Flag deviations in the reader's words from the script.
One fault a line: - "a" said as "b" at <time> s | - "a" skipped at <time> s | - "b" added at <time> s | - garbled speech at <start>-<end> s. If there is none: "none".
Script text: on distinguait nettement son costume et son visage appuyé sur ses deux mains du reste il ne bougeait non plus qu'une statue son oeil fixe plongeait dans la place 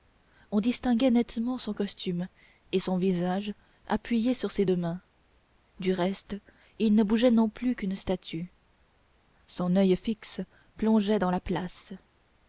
none